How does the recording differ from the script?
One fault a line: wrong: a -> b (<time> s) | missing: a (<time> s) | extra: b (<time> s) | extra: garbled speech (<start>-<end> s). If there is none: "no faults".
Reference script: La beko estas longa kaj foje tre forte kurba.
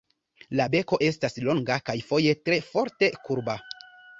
no faults